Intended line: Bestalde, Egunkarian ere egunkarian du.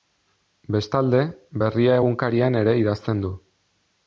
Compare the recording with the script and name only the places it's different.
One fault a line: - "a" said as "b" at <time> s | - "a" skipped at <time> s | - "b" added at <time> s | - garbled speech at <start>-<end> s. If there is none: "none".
- "Berria" added at 1.6 s
- "egunkarian" said as "idazten" at 2.8 s